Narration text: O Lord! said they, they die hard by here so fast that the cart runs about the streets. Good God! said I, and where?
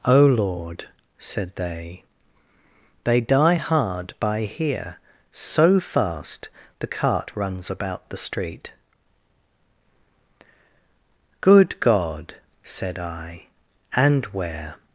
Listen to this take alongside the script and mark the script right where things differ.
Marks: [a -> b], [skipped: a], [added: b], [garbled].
O Lord! said they, they die hard by here so fast [skipped: that] the cart runs about the [streets. -> street] Good God! said I, and where?